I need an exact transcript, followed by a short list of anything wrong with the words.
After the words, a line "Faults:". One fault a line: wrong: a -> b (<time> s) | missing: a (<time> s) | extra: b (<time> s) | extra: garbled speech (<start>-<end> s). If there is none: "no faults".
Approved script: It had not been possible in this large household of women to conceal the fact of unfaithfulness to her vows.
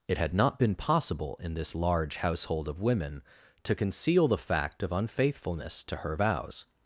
It had not been possible in this large household of women to conceal the fact of unfaithfulness to her vows.
Faults:
no faults